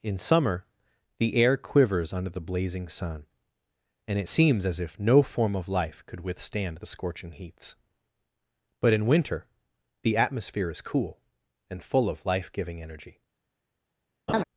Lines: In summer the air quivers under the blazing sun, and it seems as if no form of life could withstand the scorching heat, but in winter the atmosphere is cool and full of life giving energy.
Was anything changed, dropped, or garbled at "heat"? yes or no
yes